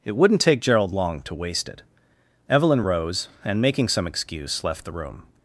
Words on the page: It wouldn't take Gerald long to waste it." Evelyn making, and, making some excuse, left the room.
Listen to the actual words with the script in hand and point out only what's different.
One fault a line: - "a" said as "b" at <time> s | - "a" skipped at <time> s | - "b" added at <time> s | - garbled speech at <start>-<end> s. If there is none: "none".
- "making" said as "rose" at 2.8 s